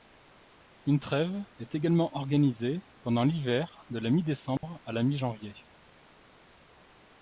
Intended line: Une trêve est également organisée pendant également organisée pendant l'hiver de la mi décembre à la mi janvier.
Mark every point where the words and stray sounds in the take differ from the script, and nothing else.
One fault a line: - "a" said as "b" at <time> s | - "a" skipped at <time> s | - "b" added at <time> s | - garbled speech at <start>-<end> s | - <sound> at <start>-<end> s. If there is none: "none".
- "également organisée pendant" skipped at 3.2 s
- dropout at 4.6-4.6 s